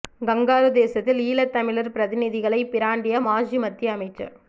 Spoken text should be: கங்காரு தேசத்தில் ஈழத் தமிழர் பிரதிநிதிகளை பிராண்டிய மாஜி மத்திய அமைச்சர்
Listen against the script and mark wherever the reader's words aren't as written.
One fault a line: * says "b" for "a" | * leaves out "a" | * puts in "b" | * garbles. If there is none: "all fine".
all fine